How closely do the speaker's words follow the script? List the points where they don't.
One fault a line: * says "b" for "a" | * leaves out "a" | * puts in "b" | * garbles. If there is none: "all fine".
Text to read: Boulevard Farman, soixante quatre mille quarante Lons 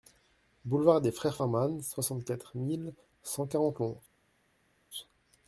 * puts in "des Frères"
* puts in "cent"